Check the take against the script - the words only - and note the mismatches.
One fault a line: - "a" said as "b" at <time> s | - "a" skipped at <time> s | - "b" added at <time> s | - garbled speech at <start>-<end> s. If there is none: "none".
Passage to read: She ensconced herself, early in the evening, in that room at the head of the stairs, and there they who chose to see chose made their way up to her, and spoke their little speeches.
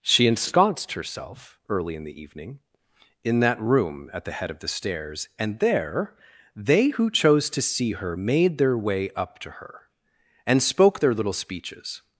- "chose" said as "her" at 7.9 s